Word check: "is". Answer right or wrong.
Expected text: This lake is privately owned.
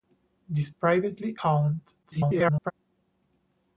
wrong